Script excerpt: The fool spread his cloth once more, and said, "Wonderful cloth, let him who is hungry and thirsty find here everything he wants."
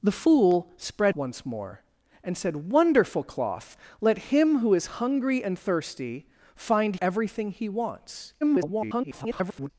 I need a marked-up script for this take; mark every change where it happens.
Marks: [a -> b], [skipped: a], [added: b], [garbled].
The fool spread [skipped: his cloth] once more, and said, "Wonderful cloth, let him who is hungry and thirsty find [skipped: here] everything he wants." [garbled]